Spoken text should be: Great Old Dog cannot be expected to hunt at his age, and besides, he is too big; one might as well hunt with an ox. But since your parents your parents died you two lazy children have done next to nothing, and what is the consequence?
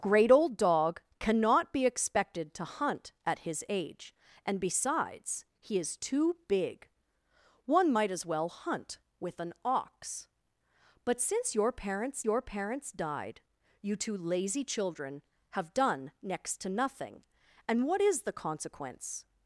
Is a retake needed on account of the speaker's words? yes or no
no